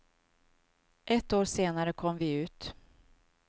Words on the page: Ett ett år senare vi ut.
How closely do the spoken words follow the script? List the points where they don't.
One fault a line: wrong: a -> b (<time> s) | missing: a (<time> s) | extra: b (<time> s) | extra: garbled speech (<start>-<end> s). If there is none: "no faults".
missing: ett (1.3 s)
extra: kom (1.9 s)